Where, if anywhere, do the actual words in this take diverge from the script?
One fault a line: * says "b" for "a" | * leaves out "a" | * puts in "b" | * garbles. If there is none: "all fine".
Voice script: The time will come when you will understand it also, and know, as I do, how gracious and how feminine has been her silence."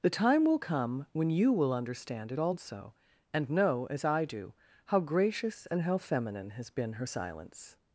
all fine